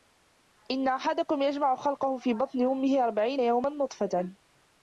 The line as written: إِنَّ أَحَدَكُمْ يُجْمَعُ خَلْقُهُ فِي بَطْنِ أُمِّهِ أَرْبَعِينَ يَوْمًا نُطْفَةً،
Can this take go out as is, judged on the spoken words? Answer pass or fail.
pass